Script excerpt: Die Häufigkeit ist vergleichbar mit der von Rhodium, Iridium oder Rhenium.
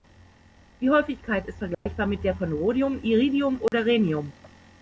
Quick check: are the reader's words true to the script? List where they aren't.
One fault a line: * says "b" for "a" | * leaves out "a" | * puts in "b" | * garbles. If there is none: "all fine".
all fine